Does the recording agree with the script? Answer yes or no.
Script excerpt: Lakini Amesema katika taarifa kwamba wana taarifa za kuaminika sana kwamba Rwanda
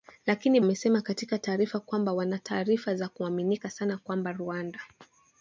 yes